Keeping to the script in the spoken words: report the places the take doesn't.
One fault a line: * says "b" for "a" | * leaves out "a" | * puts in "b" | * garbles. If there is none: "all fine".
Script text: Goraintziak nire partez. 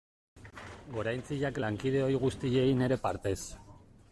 * puts in "lankide ohi guztiei"